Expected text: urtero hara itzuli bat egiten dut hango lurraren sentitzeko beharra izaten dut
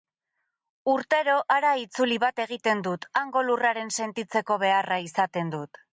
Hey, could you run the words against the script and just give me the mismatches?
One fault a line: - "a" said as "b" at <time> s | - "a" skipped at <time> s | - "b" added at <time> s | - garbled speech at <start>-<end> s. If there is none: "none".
none